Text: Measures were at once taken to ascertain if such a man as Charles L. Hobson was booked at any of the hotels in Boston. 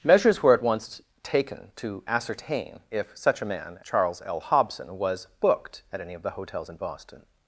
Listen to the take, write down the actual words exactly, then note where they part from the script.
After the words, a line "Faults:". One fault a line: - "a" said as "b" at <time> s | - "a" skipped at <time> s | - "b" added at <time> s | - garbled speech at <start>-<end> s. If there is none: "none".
Measures were at once taken to ascertain if such a man Charles L. Hobson was booked at any of the hotels in Boston.
Faults:
- "as" skipped at 3.8 s